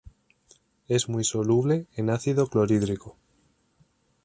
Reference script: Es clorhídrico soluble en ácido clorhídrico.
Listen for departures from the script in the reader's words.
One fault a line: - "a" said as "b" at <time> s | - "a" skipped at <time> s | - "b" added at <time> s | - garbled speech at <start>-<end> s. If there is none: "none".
- "clorhídrico" said as "muy" at 1.1 s